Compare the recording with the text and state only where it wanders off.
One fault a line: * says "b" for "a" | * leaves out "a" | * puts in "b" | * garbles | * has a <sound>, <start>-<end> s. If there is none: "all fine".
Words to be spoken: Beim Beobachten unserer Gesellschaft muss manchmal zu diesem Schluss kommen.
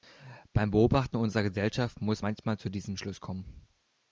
all fine